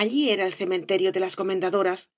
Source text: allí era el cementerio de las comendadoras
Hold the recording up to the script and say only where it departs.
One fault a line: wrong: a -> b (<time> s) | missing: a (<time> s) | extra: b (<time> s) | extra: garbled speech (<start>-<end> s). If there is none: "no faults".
no faults